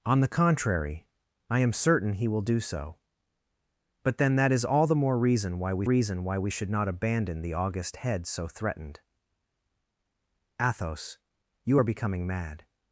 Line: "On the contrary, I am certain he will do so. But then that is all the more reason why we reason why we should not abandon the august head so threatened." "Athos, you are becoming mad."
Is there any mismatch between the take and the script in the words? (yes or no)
no